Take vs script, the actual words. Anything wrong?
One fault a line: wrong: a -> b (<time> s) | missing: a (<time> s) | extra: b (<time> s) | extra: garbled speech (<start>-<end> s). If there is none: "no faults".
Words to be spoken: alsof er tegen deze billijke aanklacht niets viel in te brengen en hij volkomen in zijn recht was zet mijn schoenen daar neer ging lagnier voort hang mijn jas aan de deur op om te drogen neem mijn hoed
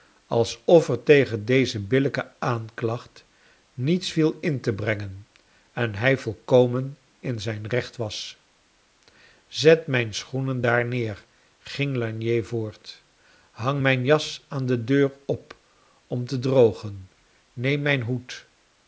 no faults